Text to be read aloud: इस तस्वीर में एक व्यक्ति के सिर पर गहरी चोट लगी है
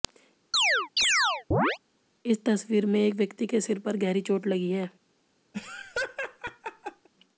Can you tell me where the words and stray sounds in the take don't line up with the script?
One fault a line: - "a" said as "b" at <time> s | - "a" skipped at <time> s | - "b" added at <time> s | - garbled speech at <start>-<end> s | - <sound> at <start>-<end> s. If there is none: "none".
- chirp at 0.5-1.8 s
- laugh at 5.5-7.1 s